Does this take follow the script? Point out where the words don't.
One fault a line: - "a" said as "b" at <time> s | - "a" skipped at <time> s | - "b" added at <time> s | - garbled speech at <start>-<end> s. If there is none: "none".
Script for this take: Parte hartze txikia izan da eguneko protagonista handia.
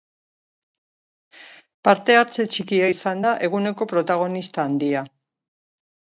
none